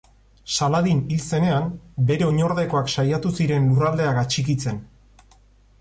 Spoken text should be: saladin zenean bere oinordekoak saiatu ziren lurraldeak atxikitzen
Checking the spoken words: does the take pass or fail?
fail